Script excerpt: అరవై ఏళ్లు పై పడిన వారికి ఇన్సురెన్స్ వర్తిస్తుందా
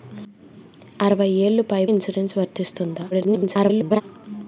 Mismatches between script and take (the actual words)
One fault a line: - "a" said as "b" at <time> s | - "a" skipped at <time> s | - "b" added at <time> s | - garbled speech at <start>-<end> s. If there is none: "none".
- "పడిన వారికి" skipped at 1.9 s
- garbled speech at 3.1-4.0 s